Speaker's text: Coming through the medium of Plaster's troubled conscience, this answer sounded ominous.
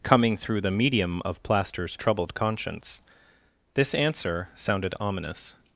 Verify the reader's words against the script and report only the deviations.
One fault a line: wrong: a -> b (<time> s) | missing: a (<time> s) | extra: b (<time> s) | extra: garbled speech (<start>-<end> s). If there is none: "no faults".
no faults